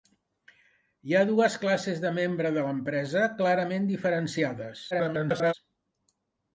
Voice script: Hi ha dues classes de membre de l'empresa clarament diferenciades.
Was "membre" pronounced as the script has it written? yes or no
yes